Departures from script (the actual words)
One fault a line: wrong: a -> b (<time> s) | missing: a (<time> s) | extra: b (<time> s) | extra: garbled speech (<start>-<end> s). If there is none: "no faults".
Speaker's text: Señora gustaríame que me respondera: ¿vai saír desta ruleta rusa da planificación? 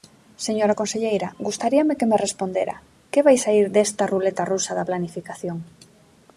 extra: conselleira (0.8 s)
extra: que (3.1 s)